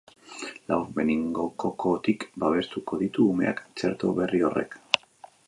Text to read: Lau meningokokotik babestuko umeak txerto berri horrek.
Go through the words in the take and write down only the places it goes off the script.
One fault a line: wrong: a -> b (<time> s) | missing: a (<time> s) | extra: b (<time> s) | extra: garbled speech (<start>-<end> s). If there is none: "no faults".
extra: ditu (3.0 s)